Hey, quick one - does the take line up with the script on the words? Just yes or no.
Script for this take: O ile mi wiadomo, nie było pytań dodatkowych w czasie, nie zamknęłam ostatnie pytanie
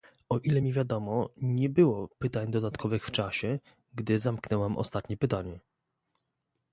no